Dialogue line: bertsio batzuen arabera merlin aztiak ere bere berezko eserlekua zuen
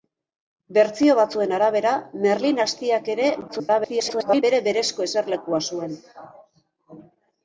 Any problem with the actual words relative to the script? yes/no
yes